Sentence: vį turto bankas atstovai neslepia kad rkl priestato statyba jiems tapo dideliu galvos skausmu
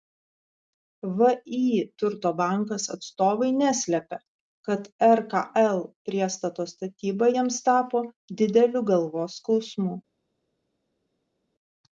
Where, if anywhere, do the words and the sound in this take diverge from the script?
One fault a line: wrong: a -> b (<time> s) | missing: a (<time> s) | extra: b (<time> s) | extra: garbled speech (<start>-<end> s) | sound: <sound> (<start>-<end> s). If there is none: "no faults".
no faults